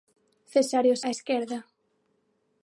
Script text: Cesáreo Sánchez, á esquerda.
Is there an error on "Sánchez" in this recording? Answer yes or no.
yes